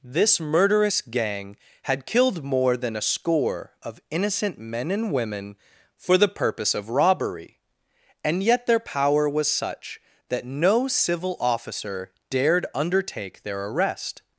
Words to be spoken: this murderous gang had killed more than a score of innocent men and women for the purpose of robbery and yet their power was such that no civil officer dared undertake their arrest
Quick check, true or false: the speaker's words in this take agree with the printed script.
true